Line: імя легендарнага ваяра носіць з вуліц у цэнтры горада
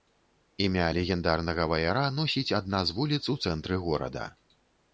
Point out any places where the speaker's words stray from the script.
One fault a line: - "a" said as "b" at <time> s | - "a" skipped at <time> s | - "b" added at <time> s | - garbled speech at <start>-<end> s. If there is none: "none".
- "адна" added at 2.6 s